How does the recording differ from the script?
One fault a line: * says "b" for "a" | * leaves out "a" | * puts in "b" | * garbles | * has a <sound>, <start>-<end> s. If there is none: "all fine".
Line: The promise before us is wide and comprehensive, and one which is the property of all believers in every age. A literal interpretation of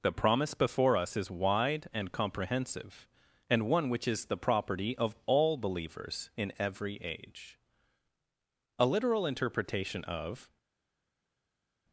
all fine